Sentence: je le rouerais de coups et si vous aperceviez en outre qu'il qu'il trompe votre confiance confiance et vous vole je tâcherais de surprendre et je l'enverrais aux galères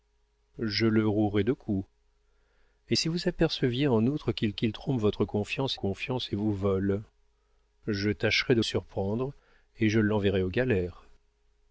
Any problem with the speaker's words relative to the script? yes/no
no